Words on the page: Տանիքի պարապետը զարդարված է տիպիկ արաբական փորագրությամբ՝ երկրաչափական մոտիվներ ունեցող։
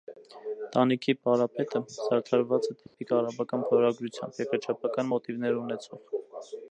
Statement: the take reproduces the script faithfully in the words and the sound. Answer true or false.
false